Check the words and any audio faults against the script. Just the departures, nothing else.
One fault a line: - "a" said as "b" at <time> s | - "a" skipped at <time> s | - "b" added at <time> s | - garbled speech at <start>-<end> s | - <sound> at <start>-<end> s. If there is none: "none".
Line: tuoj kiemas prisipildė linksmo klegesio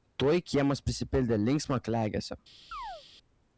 - chirp at 2.7-3.0 s